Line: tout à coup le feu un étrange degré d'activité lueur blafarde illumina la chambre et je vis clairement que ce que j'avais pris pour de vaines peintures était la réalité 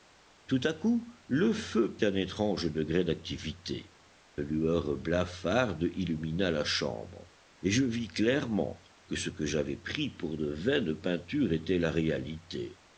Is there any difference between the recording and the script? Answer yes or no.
no